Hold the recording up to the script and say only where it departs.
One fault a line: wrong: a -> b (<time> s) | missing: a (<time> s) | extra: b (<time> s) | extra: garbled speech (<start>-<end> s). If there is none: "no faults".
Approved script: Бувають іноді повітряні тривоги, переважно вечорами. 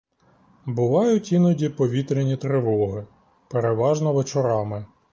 no faults